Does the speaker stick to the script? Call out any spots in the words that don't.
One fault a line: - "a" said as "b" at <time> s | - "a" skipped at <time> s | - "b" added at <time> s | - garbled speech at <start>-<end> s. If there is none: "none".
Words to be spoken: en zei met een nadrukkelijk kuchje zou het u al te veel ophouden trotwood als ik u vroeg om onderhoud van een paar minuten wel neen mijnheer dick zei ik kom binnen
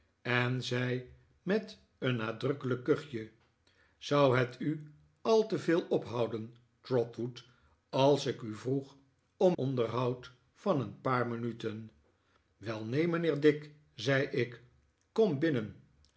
none